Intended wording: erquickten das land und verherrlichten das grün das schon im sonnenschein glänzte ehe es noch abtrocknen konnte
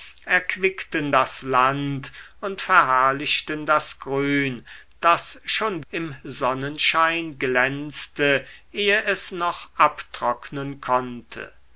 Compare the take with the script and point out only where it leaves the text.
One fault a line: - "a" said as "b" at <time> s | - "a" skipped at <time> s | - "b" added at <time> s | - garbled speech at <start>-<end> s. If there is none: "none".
none